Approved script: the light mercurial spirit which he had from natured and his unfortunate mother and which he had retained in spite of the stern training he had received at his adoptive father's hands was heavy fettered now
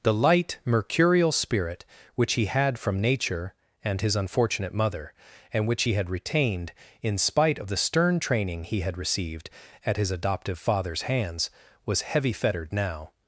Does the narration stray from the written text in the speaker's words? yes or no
yes